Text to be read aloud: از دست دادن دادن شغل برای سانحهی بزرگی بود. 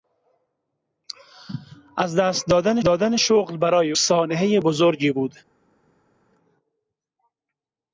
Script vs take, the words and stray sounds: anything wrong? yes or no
no